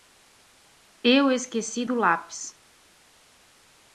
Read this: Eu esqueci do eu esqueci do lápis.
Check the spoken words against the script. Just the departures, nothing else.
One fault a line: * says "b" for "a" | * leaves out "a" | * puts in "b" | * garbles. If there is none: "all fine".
* leaves out "eu esqueci do"